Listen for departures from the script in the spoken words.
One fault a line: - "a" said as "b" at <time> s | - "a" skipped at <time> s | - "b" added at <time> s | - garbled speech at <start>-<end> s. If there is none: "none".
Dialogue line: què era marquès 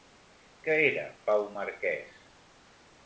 - "pau" added at 1.3 s